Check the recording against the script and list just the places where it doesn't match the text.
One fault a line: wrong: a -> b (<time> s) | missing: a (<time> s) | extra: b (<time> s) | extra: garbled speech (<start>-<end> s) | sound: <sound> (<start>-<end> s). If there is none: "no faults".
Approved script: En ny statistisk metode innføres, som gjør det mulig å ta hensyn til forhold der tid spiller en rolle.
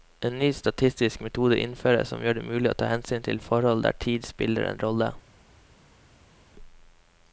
no faults